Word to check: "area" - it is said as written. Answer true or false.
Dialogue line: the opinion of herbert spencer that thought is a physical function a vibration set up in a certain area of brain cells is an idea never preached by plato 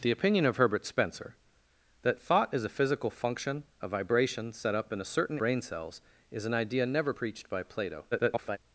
false